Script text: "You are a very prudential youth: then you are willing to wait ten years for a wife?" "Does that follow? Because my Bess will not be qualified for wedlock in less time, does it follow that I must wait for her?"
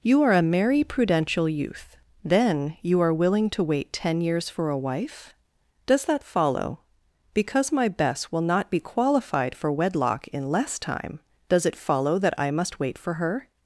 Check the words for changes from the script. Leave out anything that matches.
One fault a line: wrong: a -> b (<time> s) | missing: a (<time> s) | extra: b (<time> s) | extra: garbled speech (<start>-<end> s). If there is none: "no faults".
wrong: very -> merry (0.4 s)